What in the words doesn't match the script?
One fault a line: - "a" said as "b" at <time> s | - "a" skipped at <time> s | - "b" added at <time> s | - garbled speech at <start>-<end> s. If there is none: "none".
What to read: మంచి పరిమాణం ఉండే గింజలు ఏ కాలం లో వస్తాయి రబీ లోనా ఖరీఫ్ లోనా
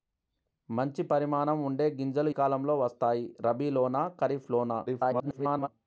- "ఏ" skipped at 2.3 s
- garbled speech at 4.9-5.7 s